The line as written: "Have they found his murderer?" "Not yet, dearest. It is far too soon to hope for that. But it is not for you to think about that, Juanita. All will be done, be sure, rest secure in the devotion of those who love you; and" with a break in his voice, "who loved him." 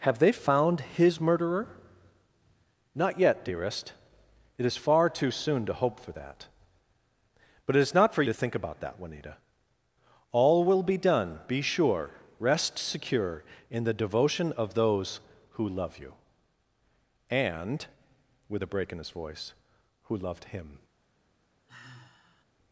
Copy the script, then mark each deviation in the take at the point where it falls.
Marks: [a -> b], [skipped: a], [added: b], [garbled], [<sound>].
"Have they found his murderer?" "Not yet, dearest. It is far too soon to hope for that. But it is not for [skipped: you] to think about that, Juanita. All will be done, be sure, rest secure in the devotion of those who love you; and" with a break in his voice, "who loved him." [sigh]